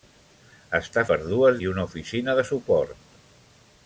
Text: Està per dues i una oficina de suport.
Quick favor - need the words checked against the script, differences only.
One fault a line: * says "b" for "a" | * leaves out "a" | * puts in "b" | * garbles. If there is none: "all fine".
all fine